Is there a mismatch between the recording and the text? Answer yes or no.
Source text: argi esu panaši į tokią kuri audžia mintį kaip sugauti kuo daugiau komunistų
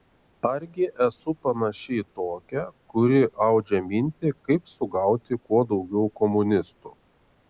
no